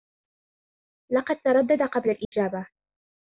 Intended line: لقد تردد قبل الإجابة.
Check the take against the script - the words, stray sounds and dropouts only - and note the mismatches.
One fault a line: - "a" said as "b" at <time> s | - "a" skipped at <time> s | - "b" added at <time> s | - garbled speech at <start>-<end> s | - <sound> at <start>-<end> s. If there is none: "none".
- dropout at 2.2-2.3 s